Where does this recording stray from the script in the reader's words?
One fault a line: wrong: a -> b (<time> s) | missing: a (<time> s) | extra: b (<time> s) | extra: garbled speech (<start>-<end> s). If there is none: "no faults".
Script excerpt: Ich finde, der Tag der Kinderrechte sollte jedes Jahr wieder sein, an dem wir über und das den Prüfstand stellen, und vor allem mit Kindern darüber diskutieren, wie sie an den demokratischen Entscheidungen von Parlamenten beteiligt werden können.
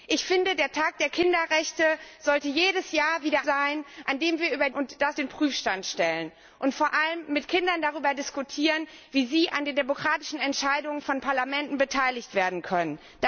no faults